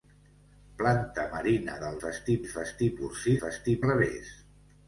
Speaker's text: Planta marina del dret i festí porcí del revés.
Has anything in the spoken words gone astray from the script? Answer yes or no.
yes